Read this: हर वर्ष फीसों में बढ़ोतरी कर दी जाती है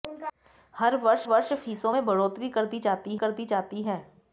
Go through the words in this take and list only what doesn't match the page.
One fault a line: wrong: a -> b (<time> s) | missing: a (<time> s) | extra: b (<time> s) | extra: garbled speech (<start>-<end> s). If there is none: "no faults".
extra: वर्ष (1.2 s)
extra: कर दी जाती (3.1 s)